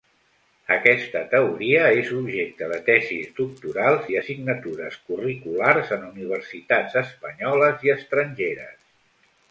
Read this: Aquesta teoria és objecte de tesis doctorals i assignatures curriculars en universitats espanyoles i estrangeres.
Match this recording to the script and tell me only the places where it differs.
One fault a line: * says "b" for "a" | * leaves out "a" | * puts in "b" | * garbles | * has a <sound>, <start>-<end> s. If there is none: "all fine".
all fine